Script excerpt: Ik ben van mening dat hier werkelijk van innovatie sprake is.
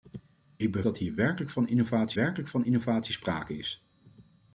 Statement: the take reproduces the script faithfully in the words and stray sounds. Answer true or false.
false